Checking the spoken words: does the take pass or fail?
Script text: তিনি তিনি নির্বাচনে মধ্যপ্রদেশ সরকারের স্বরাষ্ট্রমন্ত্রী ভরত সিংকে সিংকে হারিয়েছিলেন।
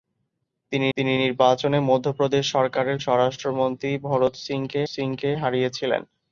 pass